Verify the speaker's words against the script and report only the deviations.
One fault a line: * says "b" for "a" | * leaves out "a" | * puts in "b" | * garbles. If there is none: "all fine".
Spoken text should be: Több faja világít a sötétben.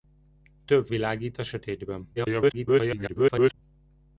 * leaves out "faja"
* garbles